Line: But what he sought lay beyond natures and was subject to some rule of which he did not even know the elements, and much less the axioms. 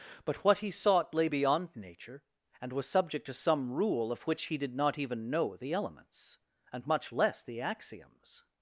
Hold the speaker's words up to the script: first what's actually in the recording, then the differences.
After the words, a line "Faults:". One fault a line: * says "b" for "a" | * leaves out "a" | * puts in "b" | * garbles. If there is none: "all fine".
But what he sought lay beyond nature and was subject to some rule of which he did not even know the elements, and much less the axioms.
Faults:
* says "nature" for "natures"